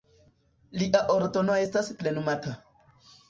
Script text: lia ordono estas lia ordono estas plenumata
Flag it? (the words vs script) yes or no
yes